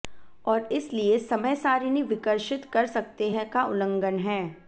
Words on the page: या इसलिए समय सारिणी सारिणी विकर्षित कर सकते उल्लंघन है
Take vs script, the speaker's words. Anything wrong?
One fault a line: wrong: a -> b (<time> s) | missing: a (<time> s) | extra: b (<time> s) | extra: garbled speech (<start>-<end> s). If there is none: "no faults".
wrong: या -> और (0.5 s)
missing: सारिणी (2.0 s)
extra: हैं का (3.3 s)